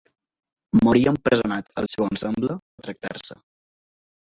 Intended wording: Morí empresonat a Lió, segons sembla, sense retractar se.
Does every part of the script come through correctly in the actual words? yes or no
no